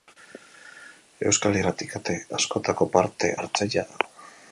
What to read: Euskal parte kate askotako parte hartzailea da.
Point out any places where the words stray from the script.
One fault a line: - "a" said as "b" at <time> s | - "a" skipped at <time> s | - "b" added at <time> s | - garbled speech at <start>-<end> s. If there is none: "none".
- "parte" said as "irrati" at 1.6 s